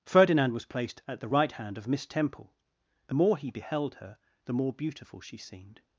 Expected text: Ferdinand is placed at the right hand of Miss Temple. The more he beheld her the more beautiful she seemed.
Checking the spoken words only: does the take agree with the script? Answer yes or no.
no